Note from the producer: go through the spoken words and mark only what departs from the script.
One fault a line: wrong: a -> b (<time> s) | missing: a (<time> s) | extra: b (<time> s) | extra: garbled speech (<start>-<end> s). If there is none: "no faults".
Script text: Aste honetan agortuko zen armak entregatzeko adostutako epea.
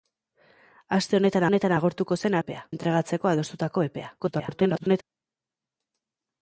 extra: honetan (1.5 s)
wrong: armak -> epea (2.4 s)
extra: garbled speech (4.2-5.0 s)